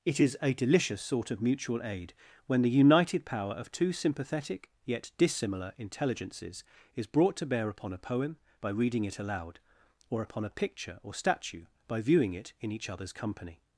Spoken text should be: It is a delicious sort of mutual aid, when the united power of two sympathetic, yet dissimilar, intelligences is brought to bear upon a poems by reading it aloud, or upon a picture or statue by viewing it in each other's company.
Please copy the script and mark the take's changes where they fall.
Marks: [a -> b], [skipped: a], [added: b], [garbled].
It is a delicious sort of mutual aid, when the united power of two sympathetic, yet dissimilar, intelligences is brought to bear upon a [poems -> poem] by reading it aloud, or upon a picture or statue by viewing it in each other's company.